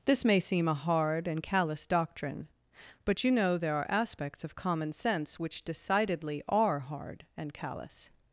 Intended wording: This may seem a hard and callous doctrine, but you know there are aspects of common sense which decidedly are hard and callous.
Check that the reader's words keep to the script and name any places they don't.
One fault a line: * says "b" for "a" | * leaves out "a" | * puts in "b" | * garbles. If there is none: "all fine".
all fine